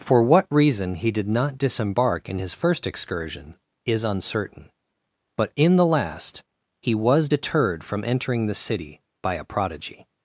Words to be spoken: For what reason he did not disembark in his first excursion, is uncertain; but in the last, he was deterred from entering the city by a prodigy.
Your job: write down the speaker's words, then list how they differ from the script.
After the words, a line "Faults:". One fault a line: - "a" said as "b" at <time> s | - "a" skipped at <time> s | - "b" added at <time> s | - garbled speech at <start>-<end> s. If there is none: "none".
For what reason he did not disembark in his first excursion, is uncertain; but in the last, he was deterred from entering the city by a prodigy.
Faults:
none